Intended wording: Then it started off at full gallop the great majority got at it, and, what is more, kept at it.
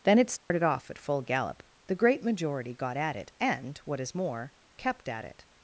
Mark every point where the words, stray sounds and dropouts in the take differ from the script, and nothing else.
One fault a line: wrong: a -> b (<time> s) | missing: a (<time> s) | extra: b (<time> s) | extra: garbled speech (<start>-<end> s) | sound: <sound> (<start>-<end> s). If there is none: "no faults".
sound: dropout (0.4-0.5 s)